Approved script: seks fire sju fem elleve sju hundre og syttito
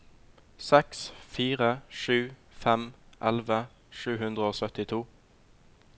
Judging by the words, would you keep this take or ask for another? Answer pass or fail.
pass